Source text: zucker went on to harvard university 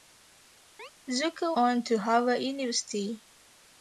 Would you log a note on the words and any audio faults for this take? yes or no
yes